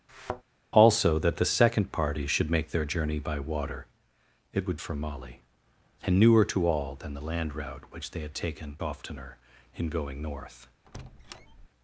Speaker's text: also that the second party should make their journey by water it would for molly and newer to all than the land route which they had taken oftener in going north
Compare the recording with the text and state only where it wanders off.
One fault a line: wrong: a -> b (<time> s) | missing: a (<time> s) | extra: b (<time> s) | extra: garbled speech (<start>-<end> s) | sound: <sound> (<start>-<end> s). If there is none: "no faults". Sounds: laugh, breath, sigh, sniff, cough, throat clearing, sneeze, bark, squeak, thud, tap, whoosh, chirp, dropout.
sound: thud (0.1-0.4 s)
sound: squeak (10.9-11.7 s)